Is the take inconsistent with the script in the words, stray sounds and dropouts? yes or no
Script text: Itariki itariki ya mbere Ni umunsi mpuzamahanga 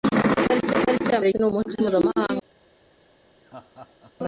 yes